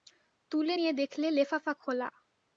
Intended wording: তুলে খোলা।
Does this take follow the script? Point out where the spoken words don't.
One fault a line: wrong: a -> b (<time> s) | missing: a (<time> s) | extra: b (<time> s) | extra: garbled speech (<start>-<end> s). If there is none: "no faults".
extra: নিয়ে দেখলে লেফাফা (0.7 s)